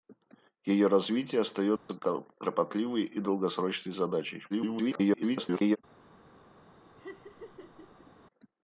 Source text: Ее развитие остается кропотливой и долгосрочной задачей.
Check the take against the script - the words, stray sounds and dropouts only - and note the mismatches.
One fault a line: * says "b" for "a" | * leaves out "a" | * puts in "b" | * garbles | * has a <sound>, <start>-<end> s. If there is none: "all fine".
* has a dropout, 1.8-1.9 s
* garbles
* has a laugh, 7.0-8.1 s